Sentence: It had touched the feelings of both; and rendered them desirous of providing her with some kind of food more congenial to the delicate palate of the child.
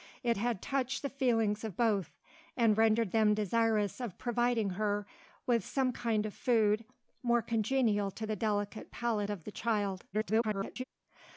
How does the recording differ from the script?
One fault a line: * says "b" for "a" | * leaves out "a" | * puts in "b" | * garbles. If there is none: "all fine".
* garbles